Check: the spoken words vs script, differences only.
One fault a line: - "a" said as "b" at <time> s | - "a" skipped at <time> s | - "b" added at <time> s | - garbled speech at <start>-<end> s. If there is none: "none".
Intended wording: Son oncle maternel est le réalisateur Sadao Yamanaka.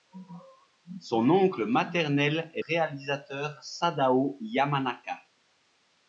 - "le" skipped at 2.6 s